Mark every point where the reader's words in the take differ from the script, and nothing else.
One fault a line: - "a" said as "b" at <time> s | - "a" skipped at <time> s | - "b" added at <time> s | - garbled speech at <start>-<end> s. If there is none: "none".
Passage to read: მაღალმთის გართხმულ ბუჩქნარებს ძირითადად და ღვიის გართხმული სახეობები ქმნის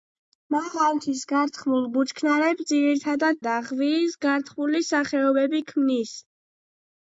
none